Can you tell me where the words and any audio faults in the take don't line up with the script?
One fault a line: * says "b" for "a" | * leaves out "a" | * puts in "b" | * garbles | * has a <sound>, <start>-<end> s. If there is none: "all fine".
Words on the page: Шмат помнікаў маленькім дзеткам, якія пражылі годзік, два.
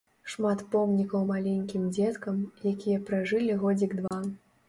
* has a dropout, 4.1-4.1 s